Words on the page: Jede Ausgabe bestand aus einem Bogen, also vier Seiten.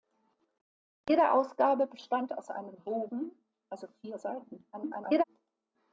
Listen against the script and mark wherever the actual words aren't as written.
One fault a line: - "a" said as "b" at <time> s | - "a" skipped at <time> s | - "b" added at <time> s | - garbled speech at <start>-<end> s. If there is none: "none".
- garbled speech at 4.7-5.2 s